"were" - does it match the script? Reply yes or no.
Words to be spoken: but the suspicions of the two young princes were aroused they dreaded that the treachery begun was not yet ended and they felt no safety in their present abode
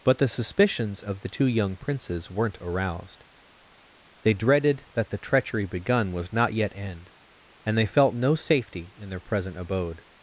no